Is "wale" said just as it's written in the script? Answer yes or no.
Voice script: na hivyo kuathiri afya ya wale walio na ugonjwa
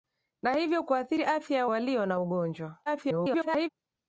no